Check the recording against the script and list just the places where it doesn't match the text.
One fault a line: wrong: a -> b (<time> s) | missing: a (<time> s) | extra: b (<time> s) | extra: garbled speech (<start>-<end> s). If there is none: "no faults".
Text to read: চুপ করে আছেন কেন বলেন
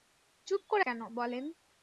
missing: আছেন (0.8 s)